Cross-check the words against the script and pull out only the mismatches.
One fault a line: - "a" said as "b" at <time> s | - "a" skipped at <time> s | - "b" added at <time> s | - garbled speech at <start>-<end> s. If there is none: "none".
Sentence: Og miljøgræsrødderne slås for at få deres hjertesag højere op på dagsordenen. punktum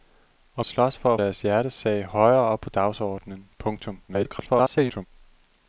- "miljøgræsrødderne" skipped at 0.7 s
- "få" skipped at 1.2 s
- garbled speech at 4.1-5.1 s